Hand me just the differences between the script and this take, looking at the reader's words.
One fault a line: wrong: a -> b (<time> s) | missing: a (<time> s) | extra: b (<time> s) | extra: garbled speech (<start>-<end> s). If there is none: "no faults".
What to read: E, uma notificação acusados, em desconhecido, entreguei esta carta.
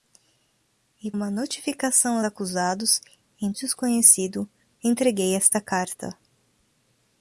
no faults